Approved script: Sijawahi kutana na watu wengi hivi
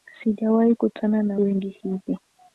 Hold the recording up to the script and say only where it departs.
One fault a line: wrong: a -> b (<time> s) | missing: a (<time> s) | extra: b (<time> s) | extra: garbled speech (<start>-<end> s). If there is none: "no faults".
missing: watu (1.4 s)